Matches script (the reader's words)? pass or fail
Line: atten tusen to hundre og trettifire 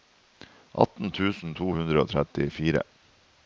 pass